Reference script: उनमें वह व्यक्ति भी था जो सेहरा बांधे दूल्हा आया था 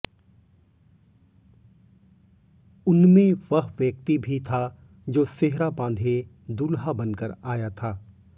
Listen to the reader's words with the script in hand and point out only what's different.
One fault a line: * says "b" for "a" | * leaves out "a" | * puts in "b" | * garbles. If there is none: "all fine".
* puts in "बनकर"